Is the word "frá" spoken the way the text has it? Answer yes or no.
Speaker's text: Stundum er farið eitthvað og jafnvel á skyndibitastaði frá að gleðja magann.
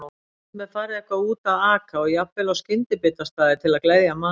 no